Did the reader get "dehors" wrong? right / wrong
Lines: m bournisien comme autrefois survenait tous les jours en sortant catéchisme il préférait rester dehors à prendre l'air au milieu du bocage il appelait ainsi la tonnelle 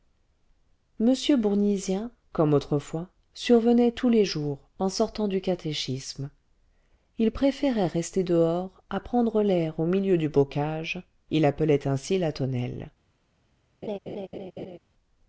right